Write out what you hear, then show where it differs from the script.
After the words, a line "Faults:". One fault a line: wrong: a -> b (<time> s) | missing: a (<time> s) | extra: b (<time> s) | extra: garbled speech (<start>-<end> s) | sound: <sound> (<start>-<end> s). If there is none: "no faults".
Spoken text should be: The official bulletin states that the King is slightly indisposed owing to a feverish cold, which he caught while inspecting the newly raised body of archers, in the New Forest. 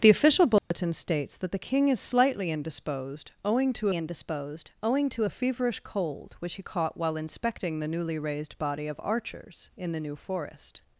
The official bulletin states that the King is slightly indisposed owing to indisposed owing to a feverish cold, which he caught while inspecting the newly raised body of archers, in the New Forest.
Faults:
sound: dropout (0.6-0.7 s)
extra: indisposed owing to (3.9 s)